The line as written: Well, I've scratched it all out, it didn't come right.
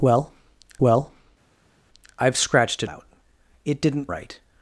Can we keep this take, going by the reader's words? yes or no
no